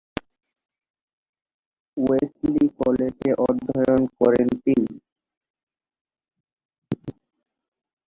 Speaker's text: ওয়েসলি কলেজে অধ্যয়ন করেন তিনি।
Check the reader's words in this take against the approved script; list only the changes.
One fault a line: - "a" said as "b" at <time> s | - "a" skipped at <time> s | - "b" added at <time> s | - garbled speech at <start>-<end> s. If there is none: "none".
none